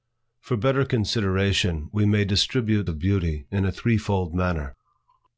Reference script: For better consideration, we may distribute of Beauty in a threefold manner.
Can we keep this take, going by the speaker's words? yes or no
yes